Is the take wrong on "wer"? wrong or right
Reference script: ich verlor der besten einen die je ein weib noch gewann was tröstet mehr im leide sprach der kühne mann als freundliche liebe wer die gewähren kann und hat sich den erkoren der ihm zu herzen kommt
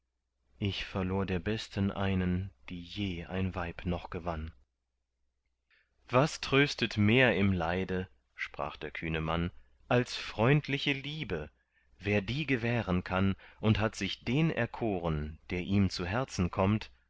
right